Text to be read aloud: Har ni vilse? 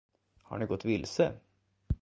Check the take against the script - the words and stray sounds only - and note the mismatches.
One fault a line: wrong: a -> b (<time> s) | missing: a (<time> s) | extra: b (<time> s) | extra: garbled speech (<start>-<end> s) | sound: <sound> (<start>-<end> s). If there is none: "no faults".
extra: gått (0.7 s)